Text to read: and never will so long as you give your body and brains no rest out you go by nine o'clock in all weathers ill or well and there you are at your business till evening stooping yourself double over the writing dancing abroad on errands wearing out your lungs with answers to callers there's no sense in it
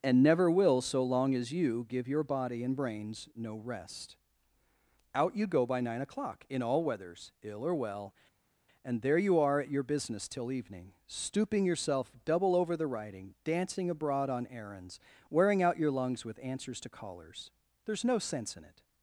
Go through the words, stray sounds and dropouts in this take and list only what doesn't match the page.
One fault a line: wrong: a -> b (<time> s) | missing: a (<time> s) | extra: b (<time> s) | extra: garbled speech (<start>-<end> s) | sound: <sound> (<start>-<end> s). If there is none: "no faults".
no faults